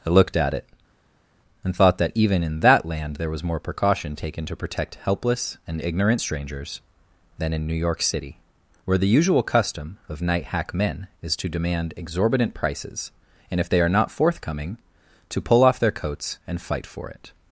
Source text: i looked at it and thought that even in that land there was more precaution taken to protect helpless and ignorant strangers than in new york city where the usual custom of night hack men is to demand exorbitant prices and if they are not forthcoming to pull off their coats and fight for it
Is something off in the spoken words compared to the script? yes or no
no